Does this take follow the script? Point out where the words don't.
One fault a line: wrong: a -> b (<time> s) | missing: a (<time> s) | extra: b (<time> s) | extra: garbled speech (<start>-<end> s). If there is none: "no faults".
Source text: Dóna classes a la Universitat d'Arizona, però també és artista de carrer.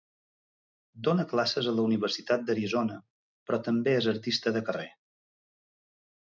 no faults